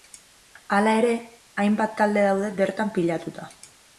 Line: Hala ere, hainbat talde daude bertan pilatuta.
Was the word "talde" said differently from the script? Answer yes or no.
no